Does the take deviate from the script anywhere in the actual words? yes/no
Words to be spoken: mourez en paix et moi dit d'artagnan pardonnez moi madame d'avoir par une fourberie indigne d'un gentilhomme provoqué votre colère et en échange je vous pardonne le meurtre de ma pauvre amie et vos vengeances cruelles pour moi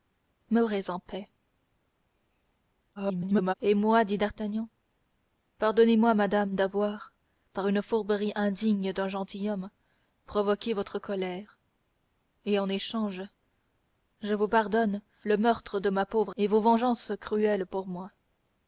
yes